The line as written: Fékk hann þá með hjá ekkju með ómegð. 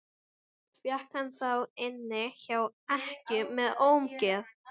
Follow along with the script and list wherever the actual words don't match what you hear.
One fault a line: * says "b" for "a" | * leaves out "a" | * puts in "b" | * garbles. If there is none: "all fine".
* says "inni" for "með"